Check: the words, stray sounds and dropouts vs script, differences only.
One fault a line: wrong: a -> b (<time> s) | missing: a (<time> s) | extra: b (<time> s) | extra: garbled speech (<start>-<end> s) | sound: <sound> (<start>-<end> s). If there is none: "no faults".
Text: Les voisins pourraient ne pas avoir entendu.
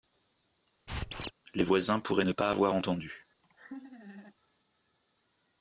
sound: squeak (0.9-1.3 s)
sound: laugh (3.4-4.3 s)